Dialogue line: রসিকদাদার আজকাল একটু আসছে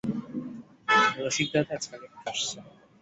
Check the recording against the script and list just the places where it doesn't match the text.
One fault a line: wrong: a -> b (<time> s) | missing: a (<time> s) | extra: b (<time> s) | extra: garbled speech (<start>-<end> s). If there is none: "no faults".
no faults